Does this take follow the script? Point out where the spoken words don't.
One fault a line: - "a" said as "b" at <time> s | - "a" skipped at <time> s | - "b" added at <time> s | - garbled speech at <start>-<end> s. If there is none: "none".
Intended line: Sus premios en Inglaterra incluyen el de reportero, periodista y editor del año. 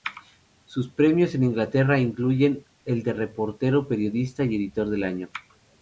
none